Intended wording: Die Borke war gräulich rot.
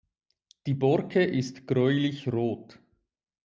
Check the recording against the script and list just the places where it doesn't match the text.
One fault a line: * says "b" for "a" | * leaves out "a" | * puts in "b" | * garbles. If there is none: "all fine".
* says "ist" for "war"